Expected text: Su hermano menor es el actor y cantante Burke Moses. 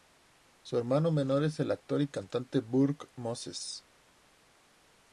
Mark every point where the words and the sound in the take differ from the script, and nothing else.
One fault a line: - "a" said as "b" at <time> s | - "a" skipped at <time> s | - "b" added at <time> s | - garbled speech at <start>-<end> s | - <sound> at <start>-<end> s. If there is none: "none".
none